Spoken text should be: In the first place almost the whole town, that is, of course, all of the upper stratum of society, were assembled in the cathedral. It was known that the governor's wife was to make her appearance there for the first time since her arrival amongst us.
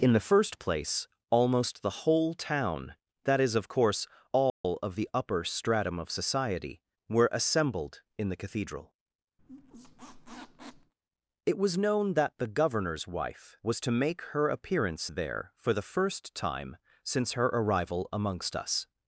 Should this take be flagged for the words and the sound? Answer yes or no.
yes